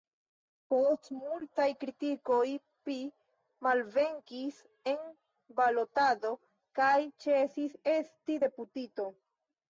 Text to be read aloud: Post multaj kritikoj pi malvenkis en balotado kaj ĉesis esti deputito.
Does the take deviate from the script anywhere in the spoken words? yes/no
no